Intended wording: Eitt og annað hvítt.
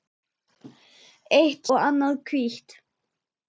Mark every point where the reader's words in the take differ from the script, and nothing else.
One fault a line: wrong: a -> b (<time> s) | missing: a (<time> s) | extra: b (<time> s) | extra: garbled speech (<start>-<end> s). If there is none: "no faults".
no faults